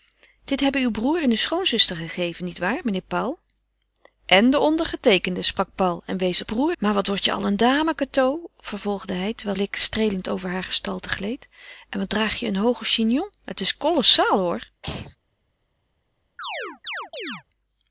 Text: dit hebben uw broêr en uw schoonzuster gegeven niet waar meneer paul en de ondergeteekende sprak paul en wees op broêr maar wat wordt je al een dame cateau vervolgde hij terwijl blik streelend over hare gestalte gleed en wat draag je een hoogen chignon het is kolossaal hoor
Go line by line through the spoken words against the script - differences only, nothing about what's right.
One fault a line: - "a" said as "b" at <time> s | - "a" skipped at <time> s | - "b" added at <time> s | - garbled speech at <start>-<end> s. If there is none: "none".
none